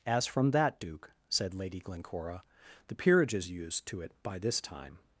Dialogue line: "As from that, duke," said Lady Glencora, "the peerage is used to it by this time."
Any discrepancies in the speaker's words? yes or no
no